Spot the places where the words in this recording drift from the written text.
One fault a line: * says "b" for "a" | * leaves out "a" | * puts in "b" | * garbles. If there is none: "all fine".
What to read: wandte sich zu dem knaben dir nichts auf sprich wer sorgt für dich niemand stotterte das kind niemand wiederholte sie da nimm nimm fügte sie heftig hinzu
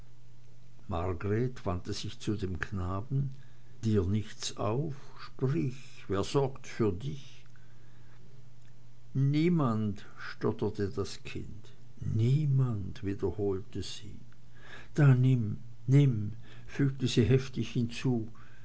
all fine